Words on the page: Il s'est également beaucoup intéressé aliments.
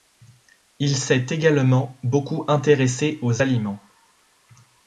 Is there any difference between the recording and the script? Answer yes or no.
yes